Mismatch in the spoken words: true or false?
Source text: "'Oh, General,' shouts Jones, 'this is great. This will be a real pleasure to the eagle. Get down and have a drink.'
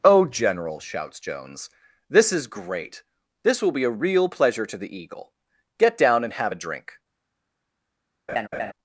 false